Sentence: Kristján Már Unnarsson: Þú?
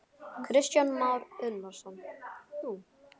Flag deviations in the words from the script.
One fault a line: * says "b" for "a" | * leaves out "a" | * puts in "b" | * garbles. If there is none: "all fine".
all fine